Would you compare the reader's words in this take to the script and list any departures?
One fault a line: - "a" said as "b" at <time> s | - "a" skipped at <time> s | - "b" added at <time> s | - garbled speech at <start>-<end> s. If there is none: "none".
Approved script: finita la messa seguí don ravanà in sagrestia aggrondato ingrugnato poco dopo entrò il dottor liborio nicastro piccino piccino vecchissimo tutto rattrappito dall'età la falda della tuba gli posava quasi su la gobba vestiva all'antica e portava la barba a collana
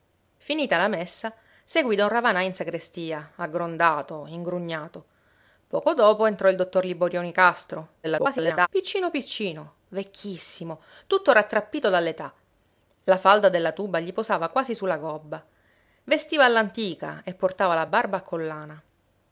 - garbled speech at 8.0-8.7 s